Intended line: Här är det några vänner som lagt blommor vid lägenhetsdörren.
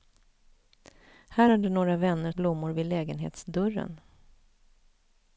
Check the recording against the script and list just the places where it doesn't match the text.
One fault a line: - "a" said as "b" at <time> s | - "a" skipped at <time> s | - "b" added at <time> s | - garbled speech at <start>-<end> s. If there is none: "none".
- "som lagt" skipped at 2.3 s